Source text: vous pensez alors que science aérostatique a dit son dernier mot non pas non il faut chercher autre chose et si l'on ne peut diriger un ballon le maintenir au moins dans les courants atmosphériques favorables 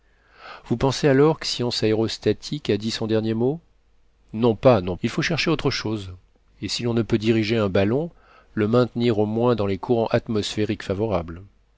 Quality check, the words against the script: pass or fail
pass